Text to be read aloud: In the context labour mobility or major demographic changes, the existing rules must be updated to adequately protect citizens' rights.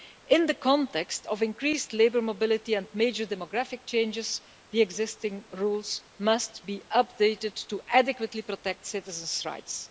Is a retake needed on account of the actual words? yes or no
yes